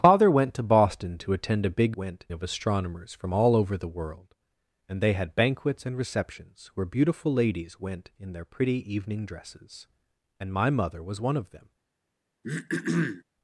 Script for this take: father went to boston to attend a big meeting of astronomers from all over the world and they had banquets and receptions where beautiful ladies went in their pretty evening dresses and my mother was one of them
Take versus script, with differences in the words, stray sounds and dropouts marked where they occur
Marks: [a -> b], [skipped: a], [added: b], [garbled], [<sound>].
father went to boston to attend a big [meeting -> went] of astronomers from all over the world and they had banquets and receptions where beautiful ladies went in their pretty evening dresses and my mother was one of them [throat clearing]